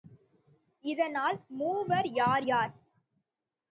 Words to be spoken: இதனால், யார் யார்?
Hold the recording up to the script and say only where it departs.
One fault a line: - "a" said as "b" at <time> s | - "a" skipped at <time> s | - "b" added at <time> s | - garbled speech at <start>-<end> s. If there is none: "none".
- "மூவர்" added at 1.5 s